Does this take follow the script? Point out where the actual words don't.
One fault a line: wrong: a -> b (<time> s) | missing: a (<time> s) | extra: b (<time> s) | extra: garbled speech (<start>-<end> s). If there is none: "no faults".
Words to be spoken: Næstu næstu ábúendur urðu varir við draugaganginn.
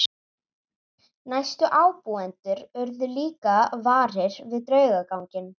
missing: næstu (1.7 s)
extra: líka (3.1 s)